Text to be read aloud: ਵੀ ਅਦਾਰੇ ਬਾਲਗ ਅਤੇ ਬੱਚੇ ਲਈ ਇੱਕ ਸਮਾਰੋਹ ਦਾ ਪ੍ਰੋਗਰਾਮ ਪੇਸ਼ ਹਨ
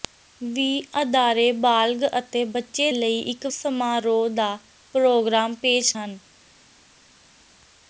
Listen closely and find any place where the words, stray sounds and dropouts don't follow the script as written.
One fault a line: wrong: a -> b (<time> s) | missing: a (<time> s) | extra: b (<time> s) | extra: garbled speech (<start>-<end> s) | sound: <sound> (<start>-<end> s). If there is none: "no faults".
no faults